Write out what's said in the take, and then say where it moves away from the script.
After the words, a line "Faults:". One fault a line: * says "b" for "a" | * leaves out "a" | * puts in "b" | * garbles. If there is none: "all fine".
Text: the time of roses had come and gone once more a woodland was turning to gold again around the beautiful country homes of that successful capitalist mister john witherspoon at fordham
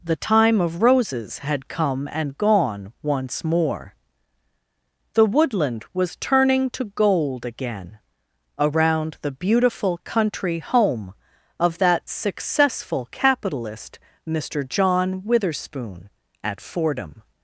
the time of roses had come and gone once more the woodland was turning to gold again around the beautiful country home of that successful capitalist mister john witherspoon at fordham
Faults:
* says "the" for "a"
* says "home" for "homes"